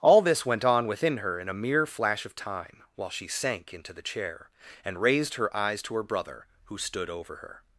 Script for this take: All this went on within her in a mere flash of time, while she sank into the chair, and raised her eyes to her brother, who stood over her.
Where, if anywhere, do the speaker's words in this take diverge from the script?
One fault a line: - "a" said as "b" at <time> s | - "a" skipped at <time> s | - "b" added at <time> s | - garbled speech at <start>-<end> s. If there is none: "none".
none